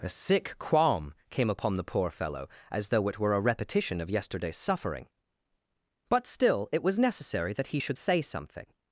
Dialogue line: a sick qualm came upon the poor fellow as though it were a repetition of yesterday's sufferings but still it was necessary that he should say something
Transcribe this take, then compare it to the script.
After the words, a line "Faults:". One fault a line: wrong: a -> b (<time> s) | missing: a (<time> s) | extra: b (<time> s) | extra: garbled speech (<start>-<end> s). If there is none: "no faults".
a sick qualm came upon the poor fellow as though it were a repetition of yesterday's suffering but still it was necessary that he should say something
Faults:
wrong: sufferings -> suffering (4.6 s)